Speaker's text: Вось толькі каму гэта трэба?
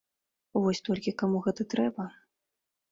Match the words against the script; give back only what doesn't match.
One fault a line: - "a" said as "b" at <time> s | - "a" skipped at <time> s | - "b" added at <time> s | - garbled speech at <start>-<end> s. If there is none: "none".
none